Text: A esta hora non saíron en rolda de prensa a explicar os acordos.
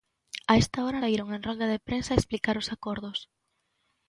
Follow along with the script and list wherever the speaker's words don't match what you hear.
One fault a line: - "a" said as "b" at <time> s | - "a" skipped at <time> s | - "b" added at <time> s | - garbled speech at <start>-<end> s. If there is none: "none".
- "non" skipped at 1.0 s